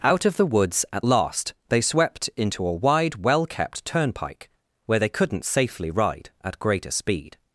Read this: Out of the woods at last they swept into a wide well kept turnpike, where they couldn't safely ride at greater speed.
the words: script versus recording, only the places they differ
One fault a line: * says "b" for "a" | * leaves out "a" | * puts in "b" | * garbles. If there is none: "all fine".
all fine